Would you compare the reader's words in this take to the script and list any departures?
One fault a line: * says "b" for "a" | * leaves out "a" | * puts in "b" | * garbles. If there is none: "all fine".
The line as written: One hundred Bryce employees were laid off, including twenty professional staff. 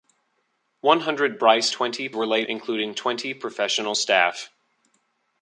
* says "twenty" for "employees"
* leaves out "off"